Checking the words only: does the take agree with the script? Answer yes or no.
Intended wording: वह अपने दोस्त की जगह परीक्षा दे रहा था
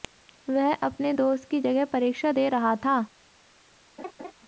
yes